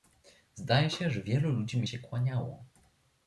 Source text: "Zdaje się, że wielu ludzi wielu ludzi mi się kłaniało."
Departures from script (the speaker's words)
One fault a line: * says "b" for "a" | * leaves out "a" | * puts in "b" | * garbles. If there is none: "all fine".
* leaves out "wielu ludzi"